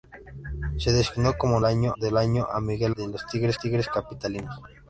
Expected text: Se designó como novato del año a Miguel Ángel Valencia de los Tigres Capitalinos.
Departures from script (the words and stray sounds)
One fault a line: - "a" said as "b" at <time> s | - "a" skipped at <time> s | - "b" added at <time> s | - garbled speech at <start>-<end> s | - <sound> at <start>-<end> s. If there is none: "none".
- "novato" said as "año" at 1.6 s
- "Ángel Valencia" skipped at 3.0 s
- "Tigres" added at 3.5 s